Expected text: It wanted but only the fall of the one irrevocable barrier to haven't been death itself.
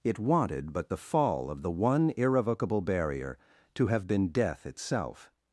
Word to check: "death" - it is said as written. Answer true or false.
true